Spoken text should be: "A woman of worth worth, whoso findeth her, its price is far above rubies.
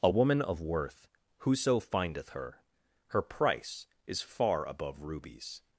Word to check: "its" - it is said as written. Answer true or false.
false